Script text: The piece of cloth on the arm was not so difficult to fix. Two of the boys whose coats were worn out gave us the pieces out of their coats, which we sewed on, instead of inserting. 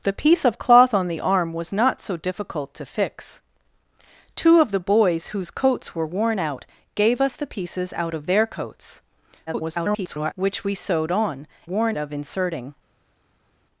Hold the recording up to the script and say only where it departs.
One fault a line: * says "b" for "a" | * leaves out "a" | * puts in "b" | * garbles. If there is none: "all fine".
* garbles
* says "worn" for "instead"